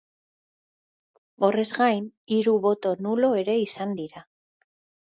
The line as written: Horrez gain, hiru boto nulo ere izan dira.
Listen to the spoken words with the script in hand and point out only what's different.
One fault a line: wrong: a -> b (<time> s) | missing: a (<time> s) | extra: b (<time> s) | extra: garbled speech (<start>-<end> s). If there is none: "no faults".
no faults